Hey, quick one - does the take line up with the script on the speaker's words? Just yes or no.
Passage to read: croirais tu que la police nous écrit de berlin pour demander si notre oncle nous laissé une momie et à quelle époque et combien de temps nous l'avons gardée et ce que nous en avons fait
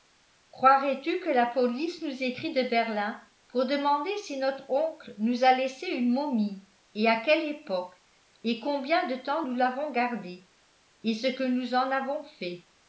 no